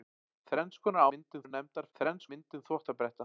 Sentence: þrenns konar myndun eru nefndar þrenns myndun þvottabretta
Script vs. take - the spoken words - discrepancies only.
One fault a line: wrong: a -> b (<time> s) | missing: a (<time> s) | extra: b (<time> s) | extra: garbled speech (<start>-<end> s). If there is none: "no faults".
no faults